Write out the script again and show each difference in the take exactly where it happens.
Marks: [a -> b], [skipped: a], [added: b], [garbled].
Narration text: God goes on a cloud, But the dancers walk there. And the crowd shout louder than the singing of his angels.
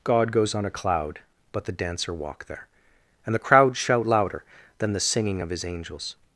God goes on a cloud, But the [dancers -> dancer] walk there. And the crowd shout louder than the singing of his angels.